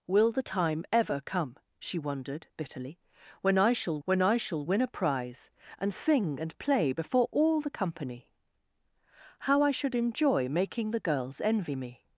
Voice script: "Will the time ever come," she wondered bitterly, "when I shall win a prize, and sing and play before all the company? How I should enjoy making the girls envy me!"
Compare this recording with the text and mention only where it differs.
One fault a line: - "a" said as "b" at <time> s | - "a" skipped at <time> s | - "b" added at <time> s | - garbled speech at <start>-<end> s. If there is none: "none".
- "when I shall" added at 4.0 s